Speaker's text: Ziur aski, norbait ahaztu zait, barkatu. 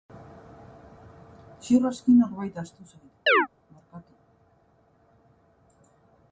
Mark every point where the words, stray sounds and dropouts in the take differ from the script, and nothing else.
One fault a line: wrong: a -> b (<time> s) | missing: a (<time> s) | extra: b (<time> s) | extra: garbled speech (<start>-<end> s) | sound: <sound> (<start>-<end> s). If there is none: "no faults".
sound: chirp (3.3-3.5 s)